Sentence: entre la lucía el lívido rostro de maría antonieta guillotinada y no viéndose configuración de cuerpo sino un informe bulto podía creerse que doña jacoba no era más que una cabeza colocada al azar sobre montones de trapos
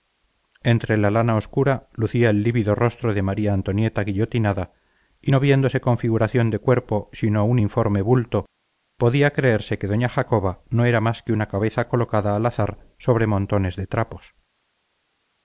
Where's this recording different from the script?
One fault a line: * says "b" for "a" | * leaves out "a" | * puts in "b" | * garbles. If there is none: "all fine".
* puts in "lana obscura"